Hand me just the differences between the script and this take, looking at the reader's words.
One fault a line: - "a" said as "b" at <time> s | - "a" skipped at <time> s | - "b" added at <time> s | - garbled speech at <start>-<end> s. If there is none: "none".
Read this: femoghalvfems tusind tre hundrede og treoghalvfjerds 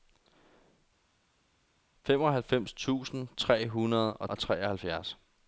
- "og" added at 4.3 s